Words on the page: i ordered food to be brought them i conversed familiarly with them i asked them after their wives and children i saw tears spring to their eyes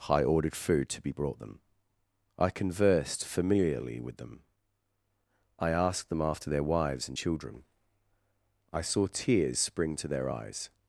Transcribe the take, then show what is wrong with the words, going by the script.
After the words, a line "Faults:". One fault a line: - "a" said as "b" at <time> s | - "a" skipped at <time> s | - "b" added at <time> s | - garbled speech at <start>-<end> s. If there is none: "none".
i ordered food to be brought them i conversed familiarly with them i asked them after their wives and children i saw tears spring to their eyes
Faults:
none